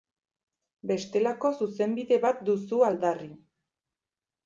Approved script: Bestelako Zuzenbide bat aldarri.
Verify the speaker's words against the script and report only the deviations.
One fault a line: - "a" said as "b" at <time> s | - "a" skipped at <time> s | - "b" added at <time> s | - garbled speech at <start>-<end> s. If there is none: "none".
- "duzu" added at 2.5 s